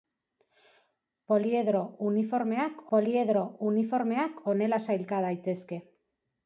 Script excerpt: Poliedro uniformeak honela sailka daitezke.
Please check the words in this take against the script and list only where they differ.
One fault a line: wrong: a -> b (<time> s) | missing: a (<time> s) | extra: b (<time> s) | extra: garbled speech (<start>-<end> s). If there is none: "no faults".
extra: poliedro uniformeak (3.0 s)